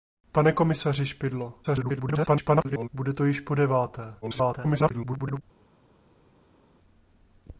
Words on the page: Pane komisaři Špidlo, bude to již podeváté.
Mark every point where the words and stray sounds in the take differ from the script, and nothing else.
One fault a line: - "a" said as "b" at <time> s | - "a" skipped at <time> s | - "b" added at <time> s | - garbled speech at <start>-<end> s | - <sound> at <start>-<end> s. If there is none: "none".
- garbled speech at 1.6-2.9 s
- garbled speech at 4.2-5.4 s